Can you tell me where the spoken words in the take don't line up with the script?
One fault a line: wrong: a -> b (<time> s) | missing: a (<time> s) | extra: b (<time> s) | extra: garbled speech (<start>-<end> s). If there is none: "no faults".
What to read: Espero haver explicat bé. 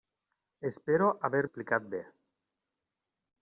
no faults